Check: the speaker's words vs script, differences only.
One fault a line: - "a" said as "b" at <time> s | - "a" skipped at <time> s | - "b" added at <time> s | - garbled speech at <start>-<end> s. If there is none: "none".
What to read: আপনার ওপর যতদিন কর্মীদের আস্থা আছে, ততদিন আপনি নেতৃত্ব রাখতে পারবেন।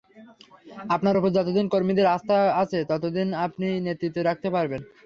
none